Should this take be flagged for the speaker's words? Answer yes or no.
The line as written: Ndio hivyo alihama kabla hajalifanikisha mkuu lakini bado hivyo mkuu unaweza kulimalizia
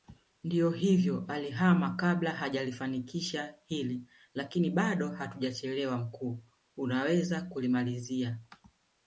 yes